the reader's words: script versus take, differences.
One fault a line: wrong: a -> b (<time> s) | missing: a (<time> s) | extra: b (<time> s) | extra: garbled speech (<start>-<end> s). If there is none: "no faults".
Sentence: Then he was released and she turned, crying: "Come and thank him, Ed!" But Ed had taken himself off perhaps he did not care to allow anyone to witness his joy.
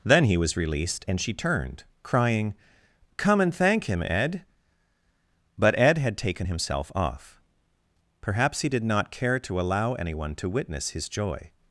no faults